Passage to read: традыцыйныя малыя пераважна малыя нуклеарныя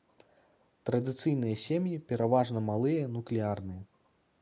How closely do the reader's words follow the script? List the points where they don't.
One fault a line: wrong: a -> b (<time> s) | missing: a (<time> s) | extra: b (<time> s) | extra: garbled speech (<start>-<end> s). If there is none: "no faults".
wrong: малыя -> сем'і (1.7 s)